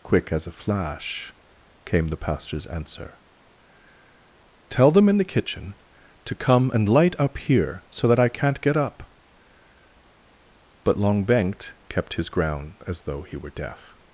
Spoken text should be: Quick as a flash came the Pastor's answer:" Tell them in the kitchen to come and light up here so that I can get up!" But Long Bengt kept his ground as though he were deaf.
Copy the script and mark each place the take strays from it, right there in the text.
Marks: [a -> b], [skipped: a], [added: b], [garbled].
Quick as a flash came the Pastor's answer:" Tell them in the kitchen to come and light up here so that I [can -> can't] get up!" But Long Bengt kept his ground as though he were deaf.